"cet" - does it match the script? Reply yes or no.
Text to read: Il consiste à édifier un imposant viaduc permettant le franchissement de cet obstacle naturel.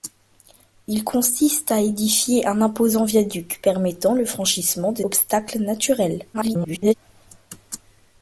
no